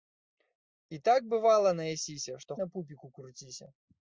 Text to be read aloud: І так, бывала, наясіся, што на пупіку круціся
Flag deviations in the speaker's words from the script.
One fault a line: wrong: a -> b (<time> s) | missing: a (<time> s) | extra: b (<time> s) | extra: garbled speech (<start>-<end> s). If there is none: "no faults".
no faults